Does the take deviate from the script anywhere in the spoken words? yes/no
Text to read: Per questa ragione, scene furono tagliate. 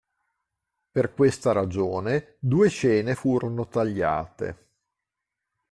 yes